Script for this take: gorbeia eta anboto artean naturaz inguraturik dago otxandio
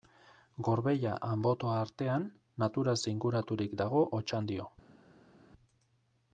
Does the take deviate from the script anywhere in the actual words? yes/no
yes